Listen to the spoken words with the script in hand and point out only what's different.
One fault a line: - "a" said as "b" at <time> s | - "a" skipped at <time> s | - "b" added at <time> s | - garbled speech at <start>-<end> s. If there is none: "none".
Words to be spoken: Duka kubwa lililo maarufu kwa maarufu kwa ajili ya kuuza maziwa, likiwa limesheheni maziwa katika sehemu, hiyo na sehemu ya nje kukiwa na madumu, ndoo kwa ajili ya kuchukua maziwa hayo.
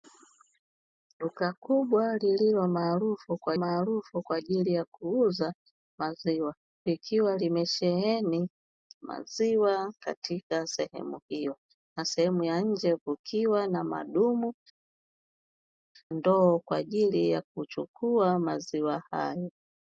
none